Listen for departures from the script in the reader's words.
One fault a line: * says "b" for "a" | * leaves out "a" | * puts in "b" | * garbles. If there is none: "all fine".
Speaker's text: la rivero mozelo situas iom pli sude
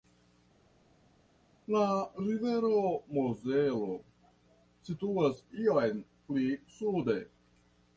all fine